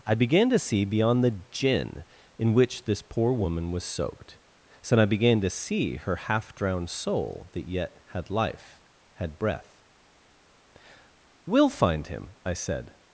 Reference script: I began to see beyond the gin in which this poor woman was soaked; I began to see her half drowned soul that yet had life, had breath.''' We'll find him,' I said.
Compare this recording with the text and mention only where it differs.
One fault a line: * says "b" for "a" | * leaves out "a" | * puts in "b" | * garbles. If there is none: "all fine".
* puts in "so"